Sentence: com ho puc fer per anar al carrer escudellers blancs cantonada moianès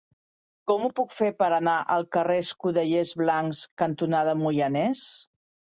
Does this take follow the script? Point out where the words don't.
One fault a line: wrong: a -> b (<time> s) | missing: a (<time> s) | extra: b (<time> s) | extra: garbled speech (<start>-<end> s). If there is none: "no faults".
no faults